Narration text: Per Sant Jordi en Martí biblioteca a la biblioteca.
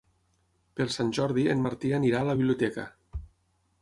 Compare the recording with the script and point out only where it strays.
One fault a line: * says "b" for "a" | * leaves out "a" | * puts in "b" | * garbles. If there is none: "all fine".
* says "anirà" for "biblioteca"